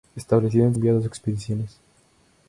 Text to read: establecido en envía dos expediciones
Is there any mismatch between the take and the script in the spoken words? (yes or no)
no